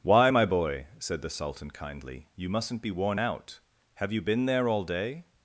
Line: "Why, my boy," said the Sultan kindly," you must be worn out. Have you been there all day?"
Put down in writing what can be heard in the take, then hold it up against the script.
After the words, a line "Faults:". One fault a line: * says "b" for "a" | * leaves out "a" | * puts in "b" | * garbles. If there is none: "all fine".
"Why, my boy," said the Sultan kindly," you mustn't be worn out. Have you been there all day?"
Faults:
* says "mustn't" for "must"